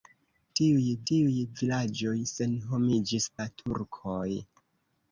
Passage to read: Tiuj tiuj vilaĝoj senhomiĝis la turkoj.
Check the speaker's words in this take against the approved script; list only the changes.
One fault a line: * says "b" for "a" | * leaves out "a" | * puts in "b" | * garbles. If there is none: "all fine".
all fine